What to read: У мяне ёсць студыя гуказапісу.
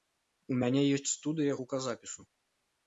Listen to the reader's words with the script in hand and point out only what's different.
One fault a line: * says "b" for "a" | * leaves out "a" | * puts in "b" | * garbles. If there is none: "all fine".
all fine